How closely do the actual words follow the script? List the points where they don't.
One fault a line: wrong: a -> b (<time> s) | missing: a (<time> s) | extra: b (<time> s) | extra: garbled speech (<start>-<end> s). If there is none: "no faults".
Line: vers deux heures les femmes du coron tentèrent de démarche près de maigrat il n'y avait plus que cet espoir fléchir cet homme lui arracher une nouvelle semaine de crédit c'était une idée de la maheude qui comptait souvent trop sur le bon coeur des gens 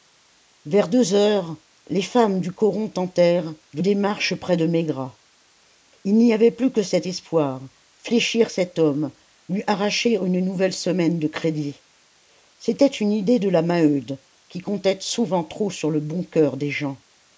no faults